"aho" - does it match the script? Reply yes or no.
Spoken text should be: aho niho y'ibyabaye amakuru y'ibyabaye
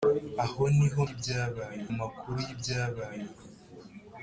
yes